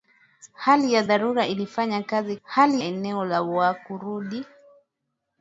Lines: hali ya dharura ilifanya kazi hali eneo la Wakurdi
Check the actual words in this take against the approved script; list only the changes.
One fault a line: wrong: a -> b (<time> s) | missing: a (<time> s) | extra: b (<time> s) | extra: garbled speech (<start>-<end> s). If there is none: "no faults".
no faults